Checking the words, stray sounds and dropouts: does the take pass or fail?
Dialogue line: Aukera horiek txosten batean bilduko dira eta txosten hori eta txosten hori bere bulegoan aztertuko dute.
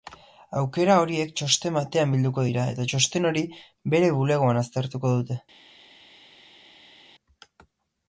fail